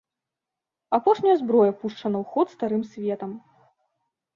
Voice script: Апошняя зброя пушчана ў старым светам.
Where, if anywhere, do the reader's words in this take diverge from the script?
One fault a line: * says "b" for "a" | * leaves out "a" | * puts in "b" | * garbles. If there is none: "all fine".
* puts in "ход"